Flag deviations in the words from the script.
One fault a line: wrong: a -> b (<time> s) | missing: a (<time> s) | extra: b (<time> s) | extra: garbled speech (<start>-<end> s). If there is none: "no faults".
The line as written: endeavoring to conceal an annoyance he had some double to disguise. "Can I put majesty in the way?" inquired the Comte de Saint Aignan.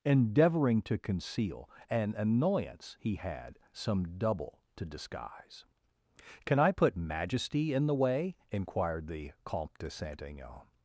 no faults